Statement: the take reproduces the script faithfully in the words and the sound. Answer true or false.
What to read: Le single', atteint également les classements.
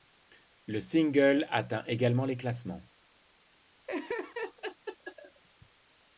false